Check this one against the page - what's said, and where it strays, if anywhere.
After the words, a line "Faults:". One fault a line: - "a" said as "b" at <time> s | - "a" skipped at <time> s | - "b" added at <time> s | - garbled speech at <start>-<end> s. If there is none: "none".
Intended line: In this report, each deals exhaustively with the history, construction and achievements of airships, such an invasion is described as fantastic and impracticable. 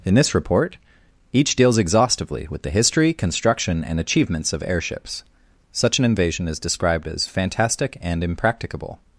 In this report, each deals exhaustively with the history, construction and achievements of airships, such an invasion is described as fantastic and impracticable.
Faults:
none